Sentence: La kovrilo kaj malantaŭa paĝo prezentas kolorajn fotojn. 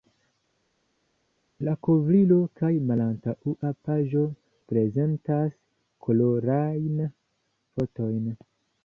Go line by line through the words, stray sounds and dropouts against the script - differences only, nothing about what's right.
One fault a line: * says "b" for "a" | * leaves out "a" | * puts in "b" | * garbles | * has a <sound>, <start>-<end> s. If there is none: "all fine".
all fine